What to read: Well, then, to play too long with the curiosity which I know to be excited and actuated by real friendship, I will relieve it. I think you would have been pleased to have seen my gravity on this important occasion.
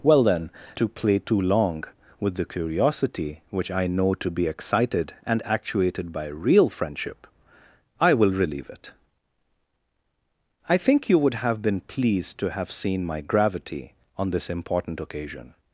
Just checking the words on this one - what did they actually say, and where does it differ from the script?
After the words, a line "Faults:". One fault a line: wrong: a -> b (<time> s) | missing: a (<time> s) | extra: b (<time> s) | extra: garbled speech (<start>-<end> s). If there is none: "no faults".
Well, then, to play too long with the curiosity which I know to be excited and actuated by real friendship, I will relieve it. I think you would have been pleased to have seen my gravity on this important occasion.
Faults:
no faults